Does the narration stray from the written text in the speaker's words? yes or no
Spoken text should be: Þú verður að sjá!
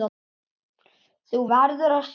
no